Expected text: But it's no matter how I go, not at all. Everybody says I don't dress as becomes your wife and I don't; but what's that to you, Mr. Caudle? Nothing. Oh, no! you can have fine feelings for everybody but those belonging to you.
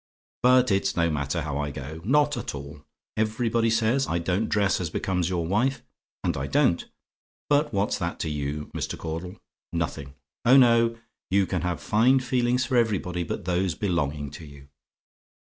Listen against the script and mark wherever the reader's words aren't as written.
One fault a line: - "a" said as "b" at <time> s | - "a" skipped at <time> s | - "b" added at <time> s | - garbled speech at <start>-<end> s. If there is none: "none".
none